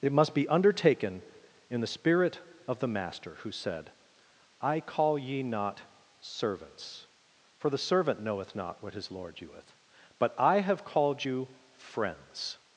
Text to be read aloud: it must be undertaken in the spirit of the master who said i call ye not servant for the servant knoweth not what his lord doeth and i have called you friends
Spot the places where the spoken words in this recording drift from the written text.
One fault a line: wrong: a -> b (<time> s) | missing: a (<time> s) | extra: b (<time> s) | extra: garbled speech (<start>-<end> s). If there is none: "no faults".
wrong: servant -> servants (6.2 s)
wrong: and -> but (10.2 s)